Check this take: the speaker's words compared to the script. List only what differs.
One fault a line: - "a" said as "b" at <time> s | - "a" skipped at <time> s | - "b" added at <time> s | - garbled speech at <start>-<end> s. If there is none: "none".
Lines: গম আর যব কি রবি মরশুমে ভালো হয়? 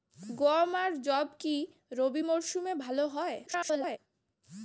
- garbled speech at 3.5-4.0 s